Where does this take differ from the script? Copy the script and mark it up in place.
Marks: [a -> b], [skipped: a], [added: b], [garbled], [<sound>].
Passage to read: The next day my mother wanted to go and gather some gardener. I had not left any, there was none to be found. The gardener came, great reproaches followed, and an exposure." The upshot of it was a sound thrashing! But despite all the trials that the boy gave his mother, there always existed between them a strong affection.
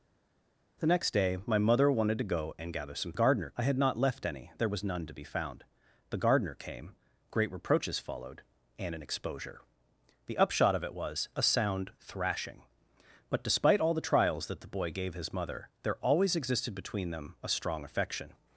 The next day my mother wanted to go and gather some gardener. I had not left any, there was none to be found. The gardener came, great reproaches followed, and an exposure." The upshot of it was a sound thrashing! But despite all the trials that the boy gave his mother, there always existed between them a strong affection.